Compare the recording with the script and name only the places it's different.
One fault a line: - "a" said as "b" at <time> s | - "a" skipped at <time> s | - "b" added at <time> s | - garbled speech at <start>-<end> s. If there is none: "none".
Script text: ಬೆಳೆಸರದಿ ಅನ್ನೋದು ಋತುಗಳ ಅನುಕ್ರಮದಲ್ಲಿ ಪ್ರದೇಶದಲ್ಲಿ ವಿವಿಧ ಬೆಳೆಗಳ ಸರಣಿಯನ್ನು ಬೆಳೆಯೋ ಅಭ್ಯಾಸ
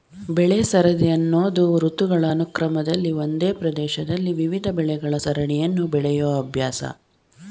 - "ಒಂದೇ" added at 3.2 s